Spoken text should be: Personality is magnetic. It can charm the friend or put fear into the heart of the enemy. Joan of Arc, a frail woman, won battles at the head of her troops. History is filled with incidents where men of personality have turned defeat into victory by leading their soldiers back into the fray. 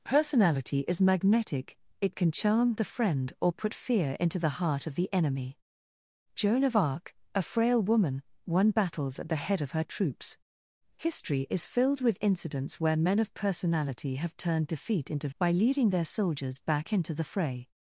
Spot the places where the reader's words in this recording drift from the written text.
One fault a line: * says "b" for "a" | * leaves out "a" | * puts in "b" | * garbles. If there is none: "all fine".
* leaves out "victory"